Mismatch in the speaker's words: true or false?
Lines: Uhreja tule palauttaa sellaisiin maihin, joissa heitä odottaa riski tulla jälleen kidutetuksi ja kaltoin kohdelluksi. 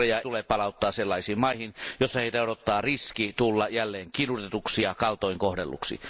false